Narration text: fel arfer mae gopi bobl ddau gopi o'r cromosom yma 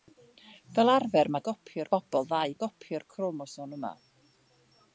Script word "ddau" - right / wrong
right